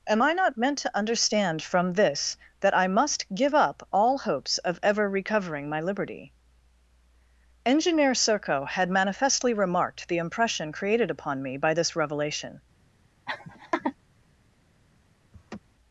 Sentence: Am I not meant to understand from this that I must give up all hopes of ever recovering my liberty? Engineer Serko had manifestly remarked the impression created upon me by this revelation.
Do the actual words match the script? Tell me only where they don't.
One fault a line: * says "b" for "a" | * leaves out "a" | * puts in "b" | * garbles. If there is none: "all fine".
all fine